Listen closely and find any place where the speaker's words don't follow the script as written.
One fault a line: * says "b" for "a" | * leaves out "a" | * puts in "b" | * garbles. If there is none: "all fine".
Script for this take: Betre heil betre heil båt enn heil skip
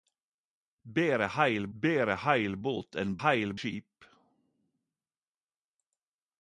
all fine